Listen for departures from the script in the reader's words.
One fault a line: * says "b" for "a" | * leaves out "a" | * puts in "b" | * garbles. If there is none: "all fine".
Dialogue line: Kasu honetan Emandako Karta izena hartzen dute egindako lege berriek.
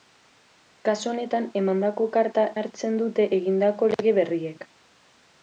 * leaves out "izena"